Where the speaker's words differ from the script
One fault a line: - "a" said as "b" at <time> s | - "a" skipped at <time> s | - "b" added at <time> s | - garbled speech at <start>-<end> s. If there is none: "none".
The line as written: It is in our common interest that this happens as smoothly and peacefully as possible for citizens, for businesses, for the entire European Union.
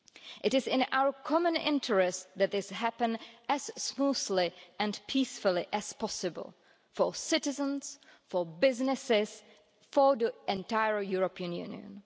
none